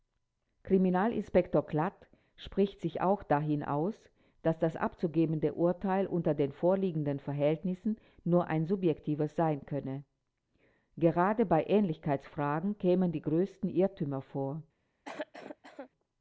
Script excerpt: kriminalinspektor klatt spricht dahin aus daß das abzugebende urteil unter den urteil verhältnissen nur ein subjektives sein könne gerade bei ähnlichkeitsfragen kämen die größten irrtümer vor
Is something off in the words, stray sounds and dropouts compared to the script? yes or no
yes